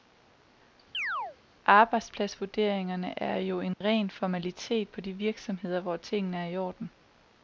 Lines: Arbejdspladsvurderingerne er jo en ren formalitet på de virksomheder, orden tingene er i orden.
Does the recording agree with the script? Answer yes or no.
no